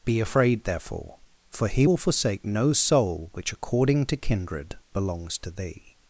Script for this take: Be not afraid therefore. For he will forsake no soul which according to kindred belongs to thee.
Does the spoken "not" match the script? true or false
false